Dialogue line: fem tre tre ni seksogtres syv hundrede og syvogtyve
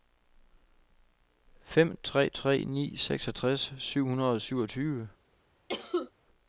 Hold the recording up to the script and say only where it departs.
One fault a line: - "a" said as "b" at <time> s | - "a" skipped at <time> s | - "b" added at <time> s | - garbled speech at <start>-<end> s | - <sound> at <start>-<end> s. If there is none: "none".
- cough at 5.7-6.1 s